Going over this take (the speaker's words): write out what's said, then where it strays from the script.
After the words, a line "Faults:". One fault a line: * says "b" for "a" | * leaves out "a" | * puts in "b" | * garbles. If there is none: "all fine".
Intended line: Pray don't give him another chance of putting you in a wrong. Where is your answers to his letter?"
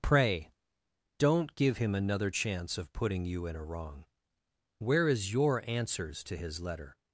Pray don't give him another chance of putting you in a wrong. Where is your answers to his letter?"
Faults:
all fine